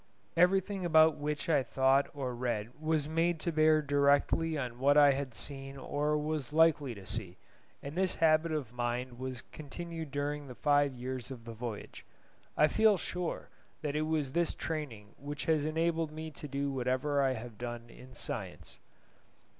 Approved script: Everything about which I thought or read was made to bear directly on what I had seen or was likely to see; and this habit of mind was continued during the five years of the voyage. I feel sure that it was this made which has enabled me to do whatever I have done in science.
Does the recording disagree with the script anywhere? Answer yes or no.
yes